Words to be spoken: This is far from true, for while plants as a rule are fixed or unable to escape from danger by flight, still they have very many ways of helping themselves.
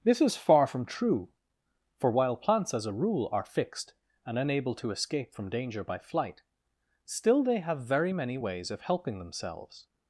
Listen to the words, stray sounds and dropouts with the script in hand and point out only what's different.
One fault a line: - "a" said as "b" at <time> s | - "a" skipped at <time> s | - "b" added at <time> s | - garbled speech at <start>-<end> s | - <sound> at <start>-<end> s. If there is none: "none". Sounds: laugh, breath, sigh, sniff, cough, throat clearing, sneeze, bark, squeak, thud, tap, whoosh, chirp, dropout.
- "or" said as "and" at 4.2 s